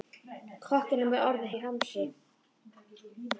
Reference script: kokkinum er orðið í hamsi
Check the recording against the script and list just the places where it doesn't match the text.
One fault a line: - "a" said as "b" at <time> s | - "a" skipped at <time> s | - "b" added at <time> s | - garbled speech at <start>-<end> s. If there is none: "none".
none